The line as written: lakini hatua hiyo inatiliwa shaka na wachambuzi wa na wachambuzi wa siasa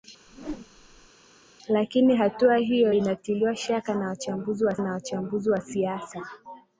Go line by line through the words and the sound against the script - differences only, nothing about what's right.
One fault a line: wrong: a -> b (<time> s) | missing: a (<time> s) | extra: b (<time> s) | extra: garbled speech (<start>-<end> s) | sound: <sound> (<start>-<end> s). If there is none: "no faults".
sound: whoosh (0.3-1.1 s)